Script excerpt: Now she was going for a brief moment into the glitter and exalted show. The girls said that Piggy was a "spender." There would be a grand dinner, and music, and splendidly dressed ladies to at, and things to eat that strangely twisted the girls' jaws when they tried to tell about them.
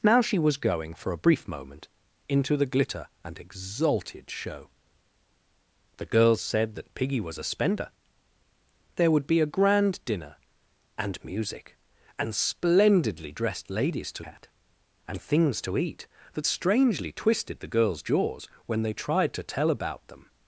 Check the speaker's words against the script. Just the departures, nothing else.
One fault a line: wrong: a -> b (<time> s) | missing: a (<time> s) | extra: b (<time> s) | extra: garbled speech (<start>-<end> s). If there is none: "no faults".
no faults